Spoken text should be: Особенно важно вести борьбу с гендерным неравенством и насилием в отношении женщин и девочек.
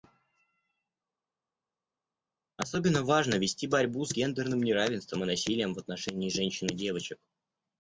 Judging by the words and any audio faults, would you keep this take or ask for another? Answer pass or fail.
pass